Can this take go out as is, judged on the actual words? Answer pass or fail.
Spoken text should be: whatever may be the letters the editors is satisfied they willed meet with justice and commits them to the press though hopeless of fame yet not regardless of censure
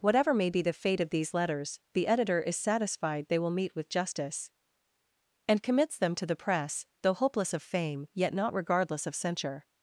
fail